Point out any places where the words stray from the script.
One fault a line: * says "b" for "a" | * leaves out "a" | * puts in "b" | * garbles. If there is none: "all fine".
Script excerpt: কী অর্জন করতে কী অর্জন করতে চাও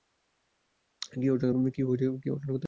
* leaves out "কী অর্জন করতে"